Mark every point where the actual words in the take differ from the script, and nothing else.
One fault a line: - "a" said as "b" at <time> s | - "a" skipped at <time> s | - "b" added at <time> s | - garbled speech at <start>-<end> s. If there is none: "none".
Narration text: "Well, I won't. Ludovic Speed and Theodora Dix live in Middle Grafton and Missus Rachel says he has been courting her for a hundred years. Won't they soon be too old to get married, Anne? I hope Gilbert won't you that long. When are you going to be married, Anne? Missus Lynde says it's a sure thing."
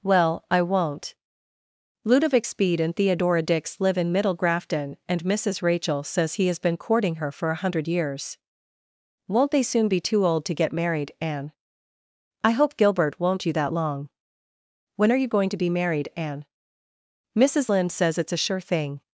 none